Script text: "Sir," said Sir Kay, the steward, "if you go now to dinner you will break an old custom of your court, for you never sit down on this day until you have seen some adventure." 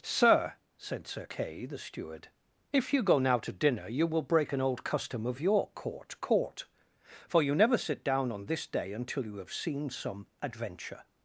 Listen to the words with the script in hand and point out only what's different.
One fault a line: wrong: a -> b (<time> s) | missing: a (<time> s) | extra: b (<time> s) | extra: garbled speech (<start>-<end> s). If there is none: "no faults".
extra: court (6.2 s)